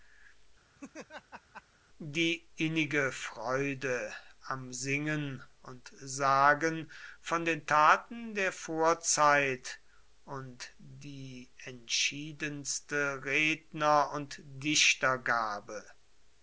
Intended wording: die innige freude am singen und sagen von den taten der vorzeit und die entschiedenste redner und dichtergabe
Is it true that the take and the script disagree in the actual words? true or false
false